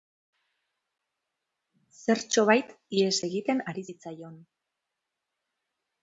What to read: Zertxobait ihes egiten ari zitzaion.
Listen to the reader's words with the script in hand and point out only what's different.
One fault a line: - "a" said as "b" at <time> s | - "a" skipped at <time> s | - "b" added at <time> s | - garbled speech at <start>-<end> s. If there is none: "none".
none